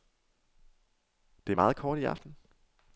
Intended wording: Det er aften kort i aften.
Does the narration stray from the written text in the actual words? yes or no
yes